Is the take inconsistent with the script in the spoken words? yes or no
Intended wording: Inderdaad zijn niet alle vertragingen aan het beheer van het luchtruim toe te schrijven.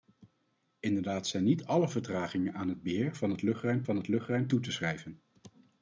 yes